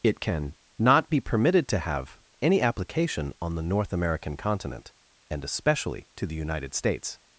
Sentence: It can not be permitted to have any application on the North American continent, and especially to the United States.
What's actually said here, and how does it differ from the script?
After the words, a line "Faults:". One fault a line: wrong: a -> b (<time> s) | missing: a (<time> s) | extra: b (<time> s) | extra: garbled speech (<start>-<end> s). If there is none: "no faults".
It can not be permitted to have any application on the North American continent, and especially to the United States.
Faults:
no faults